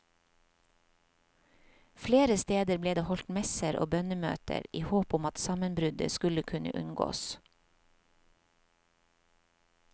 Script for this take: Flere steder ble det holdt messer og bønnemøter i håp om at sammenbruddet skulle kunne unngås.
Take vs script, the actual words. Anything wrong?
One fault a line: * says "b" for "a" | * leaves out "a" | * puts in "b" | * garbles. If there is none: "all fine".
all fine